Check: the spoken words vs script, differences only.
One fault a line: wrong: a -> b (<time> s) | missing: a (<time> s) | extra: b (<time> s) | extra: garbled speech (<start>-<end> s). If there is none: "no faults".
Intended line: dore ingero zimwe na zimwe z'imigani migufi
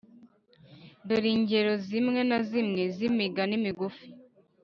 no faults